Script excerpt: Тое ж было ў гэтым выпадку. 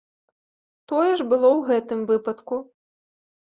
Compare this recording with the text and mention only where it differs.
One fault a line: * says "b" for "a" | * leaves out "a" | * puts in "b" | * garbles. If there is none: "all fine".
all fine